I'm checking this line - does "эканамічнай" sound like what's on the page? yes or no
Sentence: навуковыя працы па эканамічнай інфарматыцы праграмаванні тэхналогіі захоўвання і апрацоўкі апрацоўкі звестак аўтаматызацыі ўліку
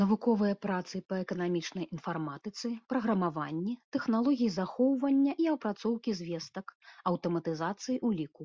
yes